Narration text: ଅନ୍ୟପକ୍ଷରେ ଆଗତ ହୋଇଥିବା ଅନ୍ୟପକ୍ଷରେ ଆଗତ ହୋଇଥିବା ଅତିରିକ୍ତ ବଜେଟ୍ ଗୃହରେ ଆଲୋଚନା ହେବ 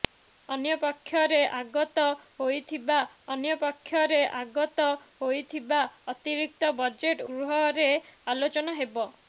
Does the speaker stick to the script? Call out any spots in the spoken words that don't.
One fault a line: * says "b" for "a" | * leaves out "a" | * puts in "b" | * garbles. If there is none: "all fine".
all fine